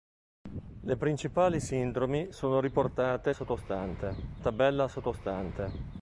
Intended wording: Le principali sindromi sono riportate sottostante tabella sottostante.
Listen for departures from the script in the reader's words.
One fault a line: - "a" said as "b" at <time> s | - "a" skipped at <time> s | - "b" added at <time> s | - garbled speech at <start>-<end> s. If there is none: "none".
none